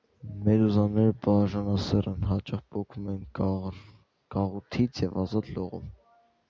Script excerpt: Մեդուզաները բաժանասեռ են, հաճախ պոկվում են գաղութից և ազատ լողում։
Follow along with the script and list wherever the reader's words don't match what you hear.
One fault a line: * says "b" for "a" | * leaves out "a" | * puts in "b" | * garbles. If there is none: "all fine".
all fine